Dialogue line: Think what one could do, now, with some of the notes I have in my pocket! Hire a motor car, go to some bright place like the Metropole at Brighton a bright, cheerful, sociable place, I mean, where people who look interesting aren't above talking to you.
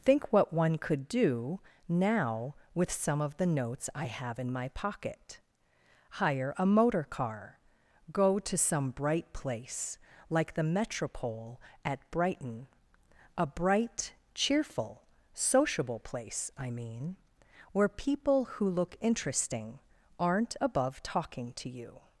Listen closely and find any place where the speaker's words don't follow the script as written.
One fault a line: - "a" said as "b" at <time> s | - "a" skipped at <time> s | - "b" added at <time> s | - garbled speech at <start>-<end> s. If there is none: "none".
none